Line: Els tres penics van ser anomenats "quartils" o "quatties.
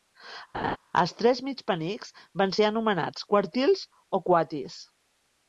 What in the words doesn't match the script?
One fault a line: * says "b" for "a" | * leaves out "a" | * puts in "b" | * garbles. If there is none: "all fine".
* puts in "mig"